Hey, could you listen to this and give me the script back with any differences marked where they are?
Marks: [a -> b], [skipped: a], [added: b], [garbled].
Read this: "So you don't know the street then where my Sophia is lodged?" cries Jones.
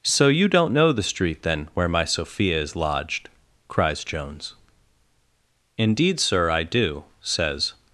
"So you don't know the street then where my Sophia is lodged?" cries Jones. [added: Indeed sir I do says]